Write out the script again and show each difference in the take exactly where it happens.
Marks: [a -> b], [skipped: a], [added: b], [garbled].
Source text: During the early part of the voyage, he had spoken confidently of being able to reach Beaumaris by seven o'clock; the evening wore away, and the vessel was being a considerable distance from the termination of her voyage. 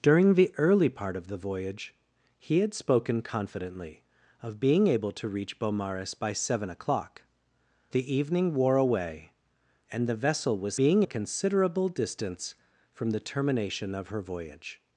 During the early part of the voyage, he had spoken confidently of being able to reach Beaumaris by seven o'clock; the evening wore away, and the vessel was being a considerable distance from the termination of her voyage.